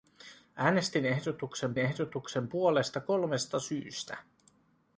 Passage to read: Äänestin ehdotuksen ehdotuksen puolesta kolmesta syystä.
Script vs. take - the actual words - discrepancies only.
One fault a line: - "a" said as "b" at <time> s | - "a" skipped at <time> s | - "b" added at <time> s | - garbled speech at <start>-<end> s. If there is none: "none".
none